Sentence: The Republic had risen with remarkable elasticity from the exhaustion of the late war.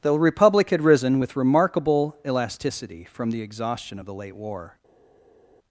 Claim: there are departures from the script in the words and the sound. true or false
false